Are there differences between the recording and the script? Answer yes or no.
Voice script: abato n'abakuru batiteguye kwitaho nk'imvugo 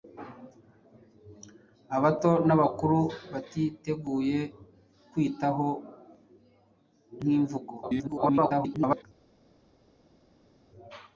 yes